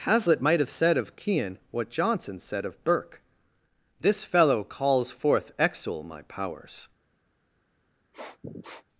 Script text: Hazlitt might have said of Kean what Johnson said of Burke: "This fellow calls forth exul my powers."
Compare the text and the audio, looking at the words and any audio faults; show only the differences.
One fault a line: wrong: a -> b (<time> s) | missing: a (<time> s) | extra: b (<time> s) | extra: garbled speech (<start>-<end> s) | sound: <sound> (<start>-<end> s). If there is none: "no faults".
sound: sniff (8.1-8.8 s)